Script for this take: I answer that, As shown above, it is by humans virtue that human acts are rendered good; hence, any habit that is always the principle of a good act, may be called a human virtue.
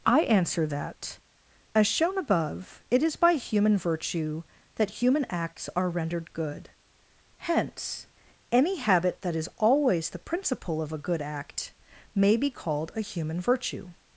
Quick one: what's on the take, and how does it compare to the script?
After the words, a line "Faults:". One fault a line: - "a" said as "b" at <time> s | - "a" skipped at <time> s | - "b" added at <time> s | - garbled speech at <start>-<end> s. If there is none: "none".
I answer that, As shown above, it is by human virtue that human acts are rendered good; hence, any habit that is always the principle of a good act, may be called a human virtue.
Faults:
- "humans" said as "human" at 3.3 s